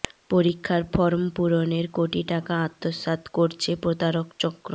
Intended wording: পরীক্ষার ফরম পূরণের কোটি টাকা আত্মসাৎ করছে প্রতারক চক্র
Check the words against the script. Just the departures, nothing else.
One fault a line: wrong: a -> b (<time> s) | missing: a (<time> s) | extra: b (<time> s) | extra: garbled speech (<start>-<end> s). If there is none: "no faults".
no faults